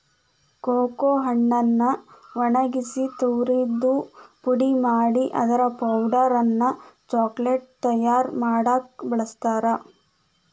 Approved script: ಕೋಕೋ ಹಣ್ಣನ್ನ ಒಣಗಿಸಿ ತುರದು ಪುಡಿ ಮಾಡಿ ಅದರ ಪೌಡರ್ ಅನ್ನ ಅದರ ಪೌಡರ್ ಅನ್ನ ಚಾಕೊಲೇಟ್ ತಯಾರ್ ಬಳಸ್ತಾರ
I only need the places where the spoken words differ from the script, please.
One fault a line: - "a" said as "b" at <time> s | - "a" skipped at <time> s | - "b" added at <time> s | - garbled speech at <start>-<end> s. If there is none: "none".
- "ಅದರ ಪೌಡರ್ ಅನ್ನ" skipped at 6.7 s
- "ಮಾಡಾಕ" added at 8.4 s